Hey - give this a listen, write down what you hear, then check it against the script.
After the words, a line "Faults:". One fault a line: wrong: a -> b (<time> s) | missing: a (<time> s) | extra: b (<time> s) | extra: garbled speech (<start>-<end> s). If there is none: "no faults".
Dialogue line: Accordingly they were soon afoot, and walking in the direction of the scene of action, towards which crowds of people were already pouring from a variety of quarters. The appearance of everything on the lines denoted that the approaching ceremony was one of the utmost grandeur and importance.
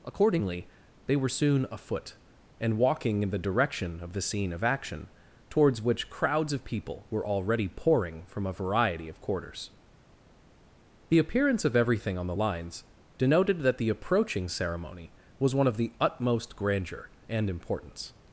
Accordingly they were soon afoot, and walking in the direction of the scene of action, towards which crowds of people were already pouring from a variety of quarters. The appearance of everything on the lines denoted that the approaching ceremony was one of the utmost grandeur and importance.
Faults:
no faults